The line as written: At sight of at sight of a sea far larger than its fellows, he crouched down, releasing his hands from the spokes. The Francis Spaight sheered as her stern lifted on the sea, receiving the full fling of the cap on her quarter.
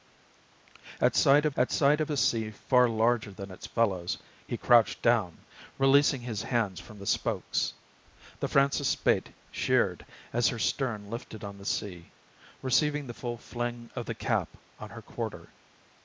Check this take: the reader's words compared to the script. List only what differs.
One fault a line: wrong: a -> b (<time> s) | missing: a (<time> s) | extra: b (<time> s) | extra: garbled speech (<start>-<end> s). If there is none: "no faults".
no faults